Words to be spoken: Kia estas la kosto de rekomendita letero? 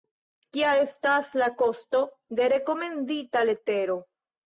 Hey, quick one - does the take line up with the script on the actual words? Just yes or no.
yes